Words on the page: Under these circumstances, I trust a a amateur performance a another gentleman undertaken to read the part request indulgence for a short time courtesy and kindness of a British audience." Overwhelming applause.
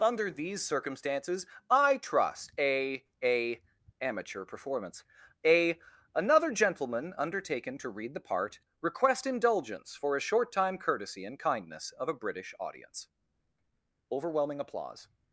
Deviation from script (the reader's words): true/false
false